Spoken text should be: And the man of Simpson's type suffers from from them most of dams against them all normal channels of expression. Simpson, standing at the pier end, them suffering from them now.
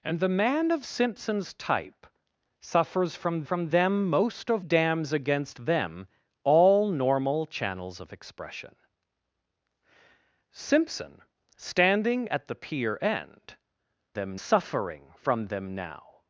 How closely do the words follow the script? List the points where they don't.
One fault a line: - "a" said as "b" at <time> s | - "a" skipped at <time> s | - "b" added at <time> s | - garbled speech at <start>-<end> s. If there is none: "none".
none